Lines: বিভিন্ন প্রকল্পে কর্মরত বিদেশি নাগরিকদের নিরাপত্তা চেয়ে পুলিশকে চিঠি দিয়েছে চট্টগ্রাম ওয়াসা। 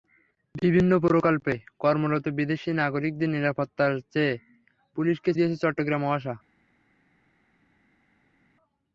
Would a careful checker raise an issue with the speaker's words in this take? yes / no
yes